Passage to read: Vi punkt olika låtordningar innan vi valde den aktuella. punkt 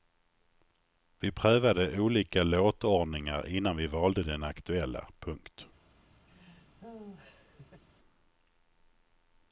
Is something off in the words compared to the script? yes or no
yes